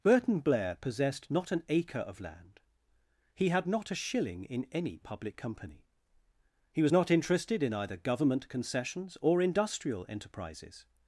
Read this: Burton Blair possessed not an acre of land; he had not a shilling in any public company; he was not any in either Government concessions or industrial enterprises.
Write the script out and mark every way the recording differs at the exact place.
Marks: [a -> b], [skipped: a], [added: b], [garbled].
Burton Blair possessed not an acre of land; he had not a shilling in any public company; he was not [any -> interested] in either Government concessions or industrial enterprises.